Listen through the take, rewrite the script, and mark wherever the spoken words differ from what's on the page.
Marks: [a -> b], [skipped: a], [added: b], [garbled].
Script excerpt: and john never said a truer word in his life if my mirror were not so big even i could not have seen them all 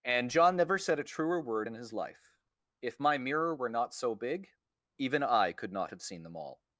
and john never said a truer word in his life if my mirror were not so big even i could not have seen them all